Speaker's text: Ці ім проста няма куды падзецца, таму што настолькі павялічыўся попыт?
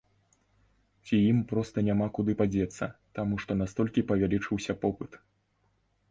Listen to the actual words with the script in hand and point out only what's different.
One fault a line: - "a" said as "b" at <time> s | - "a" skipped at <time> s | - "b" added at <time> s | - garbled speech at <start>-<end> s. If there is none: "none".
none